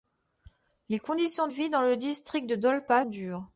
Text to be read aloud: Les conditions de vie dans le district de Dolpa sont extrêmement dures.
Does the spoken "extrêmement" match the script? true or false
false